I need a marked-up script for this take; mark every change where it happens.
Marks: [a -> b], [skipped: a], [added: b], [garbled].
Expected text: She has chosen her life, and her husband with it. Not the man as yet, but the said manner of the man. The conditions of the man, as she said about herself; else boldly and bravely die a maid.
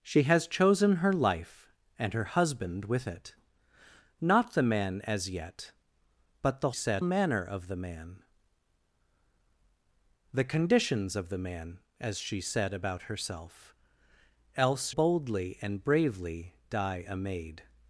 She has chosen her life, and her husband with it. Not the man as yet, but the said manner of the man. The conditions of the man, as she said about herself; else boldly and bravely die a maid.